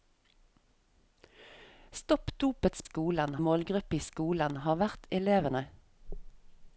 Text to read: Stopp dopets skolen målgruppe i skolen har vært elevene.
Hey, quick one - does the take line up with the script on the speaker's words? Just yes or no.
yes